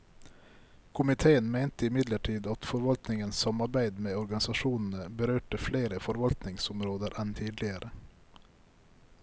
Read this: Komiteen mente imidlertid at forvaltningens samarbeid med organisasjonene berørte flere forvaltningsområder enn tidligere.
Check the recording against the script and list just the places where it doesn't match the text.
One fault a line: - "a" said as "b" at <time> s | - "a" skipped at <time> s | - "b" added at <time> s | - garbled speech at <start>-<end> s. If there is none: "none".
none